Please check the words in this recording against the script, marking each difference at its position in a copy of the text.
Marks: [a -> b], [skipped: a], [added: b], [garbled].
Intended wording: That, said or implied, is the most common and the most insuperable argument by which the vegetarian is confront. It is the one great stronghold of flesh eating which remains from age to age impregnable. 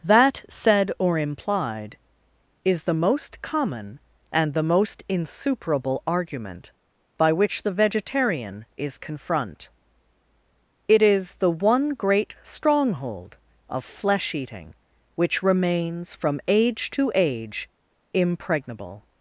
That, said or implied, is the most common and the most insuperable argument by which the vegetarian is confront. It is the one great stronghold of flesh eating which remains from age to age impregnable.